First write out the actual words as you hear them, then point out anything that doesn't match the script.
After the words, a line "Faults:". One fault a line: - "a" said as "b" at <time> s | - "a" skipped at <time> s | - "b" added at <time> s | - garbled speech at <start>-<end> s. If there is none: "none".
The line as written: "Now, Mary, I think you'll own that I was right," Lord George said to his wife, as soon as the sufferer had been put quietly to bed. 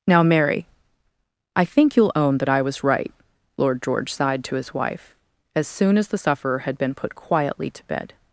"Now, Mary, I think you'll own that I was right," Lord George sighed to his wife, as soon as the sufferer had been put quietly to bed.
Faults:
- "said" said as "sighed" at 4.1 s